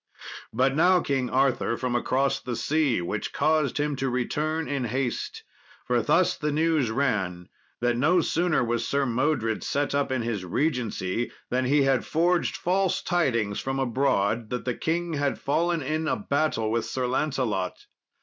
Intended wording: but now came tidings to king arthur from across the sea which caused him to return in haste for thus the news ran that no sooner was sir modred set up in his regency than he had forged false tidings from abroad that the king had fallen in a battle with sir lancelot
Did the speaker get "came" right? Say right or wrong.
wrong